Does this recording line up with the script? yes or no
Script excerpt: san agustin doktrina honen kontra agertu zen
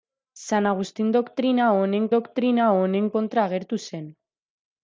no